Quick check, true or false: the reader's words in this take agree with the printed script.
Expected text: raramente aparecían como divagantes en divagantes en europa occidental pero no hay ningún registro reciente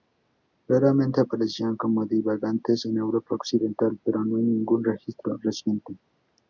false